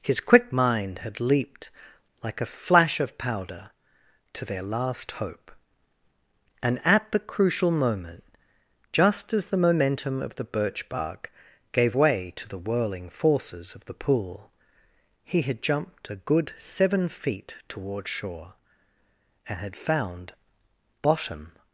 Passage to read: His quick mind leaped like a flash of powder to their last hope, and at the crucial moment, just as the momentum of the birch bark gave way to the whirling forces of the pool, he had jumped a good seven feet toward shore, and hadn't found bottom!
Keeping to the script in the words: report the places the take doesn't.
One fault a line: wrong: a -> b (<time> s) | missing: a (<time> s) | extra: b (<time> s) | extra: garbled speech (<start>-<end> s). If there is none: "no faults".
extra: had (1.0 s)
wrong: hadn't -> had (19.6 s)